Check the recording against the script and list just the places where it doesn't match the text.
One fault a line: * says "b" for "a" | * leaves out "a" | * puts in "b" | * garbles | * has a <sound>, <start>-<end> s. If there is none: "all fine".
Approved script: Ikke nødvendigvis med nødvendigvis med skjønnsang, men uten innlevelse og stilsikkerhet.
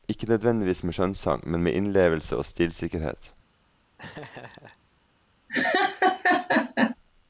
* leaves out "nødvendigvis med"
* says "med" for "uten"
* has a laugh, 4.0-4.8 s
* has a laugh, 5.5-7.0 s